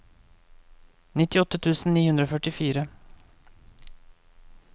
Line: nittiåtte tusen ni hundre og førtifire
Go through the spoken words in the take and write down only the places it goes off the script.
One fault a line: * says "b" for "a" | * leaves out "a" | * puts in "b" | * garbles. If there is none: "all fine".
all fine